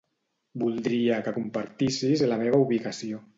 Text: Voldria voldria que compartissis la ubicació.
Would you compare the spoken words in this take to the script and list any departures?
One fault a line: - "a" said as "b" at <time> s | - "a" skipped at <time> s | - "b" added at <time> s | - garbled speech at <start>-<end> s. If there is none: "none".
- "voldria" skipped at 1.2 s
- "meva" added at 2.4 s